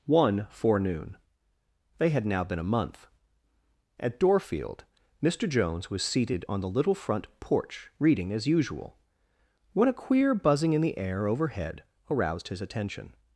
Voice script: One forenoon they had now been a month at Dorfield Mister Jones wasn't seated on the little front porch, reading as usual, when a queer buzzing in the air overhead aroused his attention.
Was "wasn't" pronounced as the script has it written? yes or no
no